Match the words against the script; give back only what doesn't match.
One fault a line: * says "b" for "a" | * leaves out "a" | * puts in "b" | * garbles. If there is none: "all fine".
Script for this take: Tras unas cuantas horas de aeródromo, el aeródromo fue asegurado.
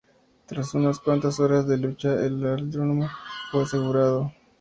* says "lucha" for "aeródromo"